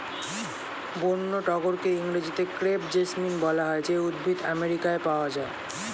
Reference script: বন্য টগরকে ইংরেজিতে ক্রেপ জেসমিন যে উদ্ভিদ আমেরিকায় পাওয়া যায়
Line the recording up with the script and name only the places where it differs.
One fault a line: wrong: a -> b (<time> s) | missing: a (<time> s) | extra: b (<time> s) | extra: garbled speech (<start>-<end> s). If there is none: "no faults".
extra: বলা হয় (3.5 s)